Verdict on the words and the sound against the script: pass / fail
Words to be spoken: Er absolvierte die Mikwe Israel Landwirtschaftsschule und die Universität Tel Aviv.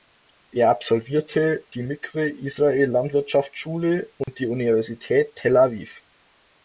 fail